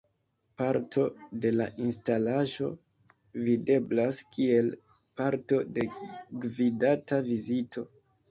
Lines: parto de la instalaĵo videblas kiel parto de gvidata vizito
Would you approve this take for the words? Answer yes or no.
yes